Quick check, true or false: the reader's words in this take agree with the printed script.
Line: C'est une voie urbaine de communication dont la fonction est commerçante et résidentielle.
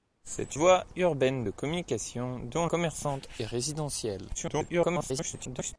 false